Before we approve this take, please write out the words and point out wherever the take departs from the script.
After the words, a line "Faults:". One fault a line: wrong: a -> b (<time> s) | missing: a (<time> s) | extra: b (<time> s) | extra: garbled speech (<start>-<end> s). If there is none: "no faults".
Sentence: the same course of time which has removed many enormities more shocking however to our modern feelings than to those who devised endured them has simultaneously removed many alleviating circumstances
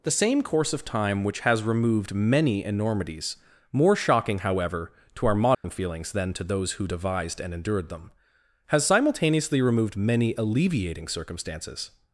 the same course of time which has removed many enormities more shocking however to our modern feelings than to those who devised and endured them has simultaneously removed many alleviating circumstances
Faults:
extra: and (7.4 s)